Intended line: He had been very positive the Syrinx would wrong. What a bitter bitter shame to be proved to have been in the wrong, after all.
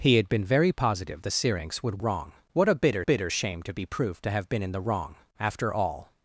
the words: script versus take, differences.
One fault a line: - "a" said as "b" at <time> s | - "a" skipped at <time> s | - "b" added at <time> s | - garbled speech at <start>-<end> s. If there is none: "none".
none